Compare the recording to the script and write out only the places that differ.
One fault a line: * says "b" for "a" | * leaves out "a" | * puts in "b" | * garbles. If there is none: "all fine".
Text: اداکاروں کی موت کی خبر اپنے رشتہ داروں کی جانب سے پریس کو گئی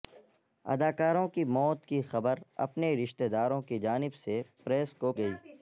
all fine